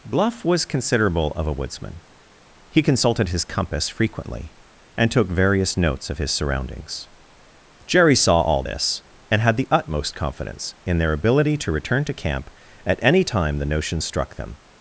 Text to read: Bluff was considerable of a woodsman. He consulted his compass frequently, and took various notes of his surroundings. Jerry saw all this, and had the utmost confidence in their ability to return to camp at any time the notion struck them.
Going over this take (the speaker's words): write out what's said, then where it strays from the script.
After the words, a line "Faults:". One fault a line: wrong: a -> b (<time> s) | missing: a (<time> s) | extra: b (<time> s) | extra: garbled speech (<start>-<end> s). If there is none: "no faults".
Bluff was considerable of a woodsman. He consulted his compass frequently, and took various notes of his surroundings. Jerry saw all this, and had the utmost confidence in their ability to return to camp at any time the notion struck them.
Faults:
no faults